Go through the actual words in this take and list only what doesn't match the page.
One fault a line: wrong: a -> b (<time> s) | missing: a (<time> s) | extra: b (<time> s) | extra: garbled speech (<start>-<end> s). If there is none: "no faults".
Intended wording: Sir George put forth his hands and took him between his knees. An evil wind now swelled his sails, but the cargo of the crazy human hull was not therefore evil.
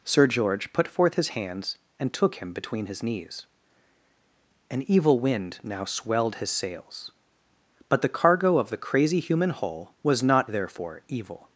no faults